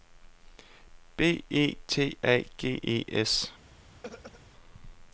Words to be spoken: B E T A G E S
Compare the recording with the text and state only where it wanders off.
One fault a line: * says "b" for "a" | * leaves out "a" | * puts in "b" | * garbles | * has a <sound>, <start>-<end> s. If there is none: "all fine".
* has a throat clearing, 4.0-4.4 s